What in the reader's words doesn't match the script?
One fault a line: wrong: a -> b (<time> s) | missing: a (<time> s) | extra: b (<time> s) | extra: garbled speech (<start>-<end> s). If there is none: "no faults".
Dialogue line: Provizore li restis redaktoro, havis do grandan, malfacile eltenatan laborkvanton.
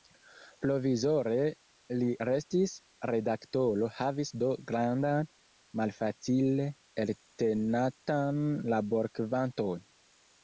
no faults